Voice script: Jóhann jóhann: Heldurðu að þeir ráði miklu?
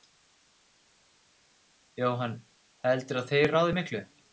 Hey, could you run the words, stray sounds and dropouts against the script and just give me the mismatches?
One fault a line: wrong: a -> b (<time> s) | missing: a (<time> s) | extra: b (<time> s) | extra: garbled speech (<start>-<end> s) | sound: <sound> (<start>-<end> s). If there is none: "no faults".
missing: jóhann (2.3 s)